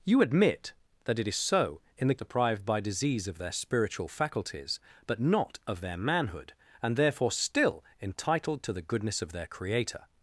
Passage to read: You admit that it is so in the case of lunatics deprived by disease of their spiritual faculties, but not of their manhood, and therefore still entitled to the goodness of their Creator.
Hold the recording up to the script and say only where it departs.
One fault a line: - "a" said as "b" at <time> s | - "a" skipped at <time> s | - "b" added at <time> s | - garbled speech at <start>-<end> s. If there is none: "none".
- "case of lunatics" skipped at 2.1 s